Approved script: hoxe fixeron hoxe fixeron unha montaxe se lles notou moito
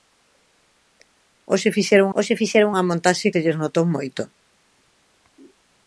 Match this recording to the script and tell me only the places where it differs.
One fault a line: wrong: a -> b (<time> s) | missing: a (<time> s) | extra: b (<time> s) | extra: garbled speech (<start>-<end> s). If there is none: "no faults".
no faults